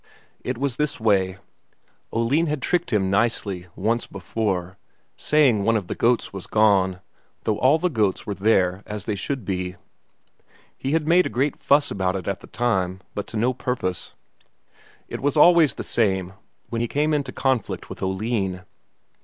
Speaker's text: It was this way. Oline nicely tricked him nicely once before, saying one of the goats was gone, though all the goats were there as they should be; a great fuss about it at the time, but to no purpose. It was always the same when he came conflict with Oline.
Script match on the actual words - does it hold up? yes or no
no